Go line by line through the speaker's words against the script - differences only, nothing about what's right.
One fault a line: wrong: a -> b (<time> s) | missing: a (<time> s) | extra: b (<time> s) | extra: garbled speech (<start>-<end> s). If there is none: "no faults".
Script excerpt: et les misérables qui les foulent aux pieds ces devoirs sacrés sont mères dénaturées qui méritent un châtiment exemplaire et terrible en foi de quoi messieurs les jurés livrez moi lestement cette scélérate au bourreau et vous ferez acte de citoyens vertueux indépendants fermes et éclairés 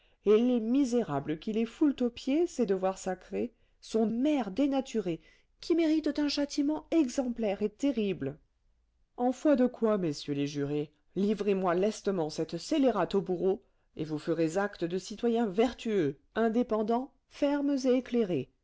no faults